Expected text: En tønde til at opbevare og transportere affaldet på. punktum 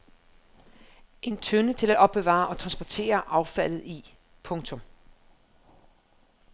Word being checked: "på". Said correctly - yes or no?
no